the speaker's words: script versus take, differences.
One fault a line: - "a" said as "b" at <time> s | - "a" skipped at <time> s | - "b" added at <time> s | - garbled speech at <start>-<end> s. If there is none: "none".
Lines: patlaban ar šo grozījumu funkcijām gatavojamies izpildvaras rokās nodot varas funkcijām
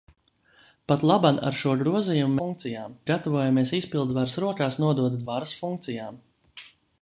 none